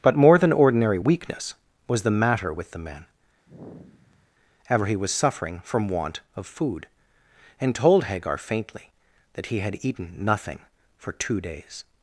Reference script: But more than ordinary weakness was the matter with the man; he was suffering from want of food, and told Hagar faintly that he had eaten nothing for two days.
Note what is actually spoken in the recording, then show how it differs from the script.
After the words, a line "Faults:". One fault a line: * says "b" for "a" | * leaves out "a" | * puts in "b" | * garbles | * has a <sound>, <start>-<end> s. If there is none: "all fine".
But more than ordinary weakness was the matter with the man; ever he was suffering from want of food, and told Hagar faintly that he had eaten nothing for two days.
Faults:
* has a sigh, 3.5-4.3 s
* puts in "ever"